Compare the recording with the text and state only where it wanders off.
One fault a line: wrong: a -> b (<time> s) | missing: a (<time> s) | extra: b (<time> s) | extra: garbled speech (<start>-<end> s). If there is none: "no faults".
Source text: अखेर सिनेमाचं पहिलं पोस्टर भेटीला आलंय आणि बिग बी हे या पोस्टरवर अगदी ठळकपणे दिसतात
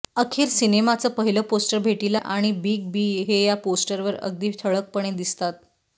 missing: आलंय (2.2 s)